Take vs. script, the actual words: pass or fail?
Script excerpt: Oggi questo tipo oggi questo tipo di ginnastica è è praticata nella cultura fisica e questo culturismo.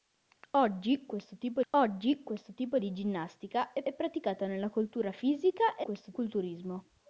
pass